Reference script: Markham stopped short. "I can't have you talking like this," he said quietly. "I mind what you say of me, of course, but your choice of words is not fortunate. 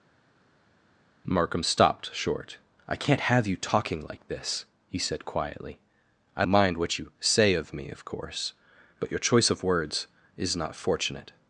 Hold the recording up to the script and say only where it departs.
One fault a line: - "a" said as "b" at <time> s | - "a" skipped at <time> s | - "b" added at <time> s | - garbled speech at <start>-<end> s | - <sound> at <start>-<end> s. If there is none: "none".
none